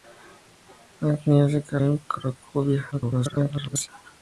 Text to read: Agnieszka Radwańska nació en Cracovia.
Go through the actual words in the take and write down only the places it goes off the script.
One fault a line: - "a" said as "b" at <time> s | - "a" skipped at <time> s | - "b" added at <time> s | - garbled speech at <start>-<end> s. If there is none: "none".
- "Radwańska nació" skipped at 1.8 s
- garbled speech at 2.9-3.9 s